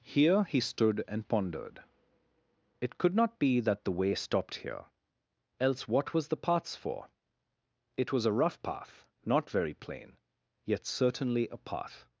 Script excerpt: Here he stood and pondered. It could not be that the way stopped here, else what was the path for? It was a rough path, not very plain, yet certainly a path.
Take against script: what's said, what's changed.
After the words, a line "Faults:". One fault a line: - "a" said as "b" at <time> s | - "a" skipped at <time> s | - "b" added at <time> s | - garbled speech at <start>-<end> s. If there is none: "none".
Here he stood and pondered. It could not be that the way stopped here, else what was the paths for? It was a rough path, not very plain, yet certainly a path.
Faults:
- "path" said as "paths" at 6.4 s